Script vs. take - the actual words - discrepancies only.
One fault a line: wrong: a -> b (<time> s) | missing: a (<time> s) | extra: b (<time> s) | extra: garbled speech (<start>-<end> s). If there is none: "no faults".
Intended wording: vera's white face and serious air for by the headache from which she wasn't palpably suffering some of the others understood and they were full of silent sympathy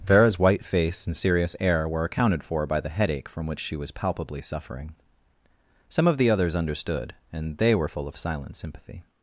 extra: were accounted (1.9 s)
wrong: wasn't -> was (3.8 s)